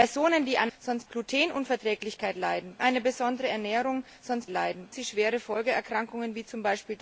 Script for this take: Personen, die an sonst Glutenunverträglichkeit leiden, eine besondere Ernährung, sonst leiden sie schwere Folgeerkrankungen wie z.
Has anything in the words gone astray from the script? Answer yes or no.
no